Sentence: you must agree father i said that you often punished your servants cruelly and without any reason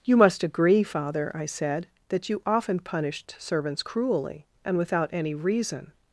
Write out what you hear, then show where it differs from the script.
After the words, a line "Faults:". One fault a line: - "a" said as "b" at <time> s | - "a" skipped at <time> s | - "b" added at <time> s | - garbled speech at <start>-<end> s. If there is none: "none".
you must agree father i said that you often punished servants cruelly and without any reason
Faults:
- "your" skipped at 3.4 s